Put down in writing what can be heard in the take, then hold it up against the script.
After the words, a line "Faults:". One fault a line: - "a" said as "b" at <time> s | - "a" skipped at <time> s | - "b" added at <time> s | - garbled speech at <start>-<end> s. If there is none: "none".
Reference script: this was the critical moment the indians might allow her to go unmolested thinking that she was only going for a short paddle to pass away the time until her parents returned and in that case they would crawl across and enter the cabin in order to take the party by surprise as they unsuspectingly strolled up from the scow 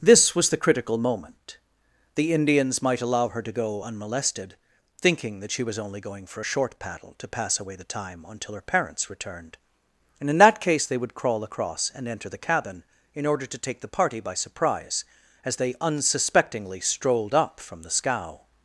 this was the critical moment the indians might allow her to go unmolested thinking that she was only going for a short paddle to pass away the time until her parents returned and in that case they would crawl across and enter the cabin in order to take the party by surprise as they unsuspectingly strolled up from the scow
Faults:
none